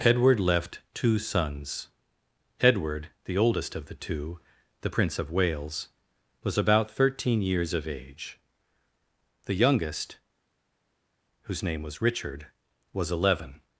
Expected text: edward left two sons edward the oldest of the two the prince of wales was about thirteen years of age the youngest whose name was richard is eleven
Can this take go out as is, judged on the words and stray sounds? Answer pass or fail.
fail